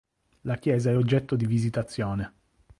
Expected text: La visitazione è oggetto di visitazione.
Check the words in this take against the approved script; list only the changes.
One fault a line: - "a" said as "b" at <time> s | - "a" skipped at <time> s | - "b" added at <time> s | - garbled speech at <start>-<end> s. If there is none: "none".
- "visitazione" said as "chiesa" at 0.6 s